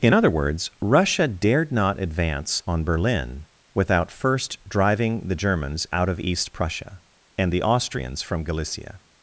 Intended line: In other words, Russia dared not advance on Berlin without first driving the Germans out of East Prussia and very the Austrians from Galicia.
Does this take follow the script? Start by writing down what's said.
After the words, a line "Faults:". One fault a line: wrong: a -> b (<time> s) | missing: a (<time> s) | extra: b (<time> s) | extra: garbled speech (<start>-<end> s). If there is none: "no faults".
In other words, Russia dared not advance on Berlin without first driving the Germans out of East Prussia and the Austrians from Galicia.
Faults:
missing: very (7.5 s)